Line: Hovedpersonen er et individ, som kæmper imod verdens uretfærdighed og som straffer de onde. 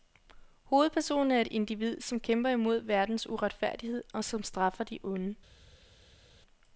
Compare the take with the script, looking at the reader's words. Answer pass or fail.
pass